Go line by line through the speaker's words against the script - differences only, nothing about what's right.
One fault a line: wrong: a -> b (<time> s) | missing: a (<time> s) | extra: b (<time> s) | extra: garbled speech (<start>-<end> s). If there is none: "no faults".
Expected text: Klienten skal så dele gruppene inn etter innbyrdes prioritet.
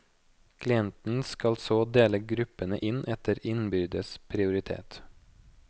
no faults